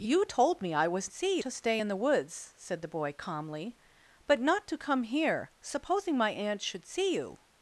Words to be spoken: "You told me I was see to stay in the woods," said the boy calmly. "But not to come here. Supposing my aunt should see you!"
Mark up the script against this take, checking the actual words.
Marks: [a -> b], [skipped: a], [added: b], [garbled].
"You told me I was see to stay in the woods," said the boy calmly. "But not to come here. Supposing my aunt should see you!"